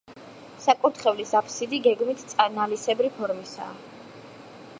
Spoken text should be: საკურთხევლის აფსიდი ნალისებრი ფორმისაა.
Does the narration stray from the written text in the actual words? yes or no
yes